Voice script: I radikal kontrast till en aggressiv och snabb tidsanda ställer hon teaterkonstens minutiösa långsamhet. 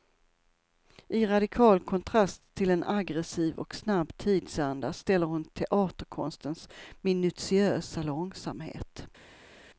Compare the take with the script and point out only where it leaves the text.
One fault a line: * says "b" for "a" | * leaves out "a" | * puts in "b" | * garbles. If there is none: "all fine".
all fine